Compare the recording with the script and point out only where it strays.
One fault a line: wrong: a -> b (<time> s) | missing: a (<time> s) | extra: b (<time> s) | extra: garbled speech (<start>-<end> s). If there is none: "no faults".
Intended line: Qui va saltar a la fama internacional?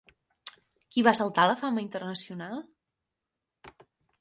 no faults